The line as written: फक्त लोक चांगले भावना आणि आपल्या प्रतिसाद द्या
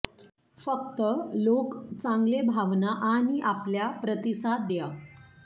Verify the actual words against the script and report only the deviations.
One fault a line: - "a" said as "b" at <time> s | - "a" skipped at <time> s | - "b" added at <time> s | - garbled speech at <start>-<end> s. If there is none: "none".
none